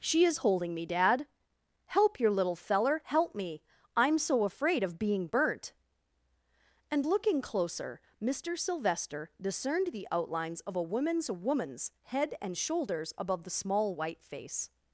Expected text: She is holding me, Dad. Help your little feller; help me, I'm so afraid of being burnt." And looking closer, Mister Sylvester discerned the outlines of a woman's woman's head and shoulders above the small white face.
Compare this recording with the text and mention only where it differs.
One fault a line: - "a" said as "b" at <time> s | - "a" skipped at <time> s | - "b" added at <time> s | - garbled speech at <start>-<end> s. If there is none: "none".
none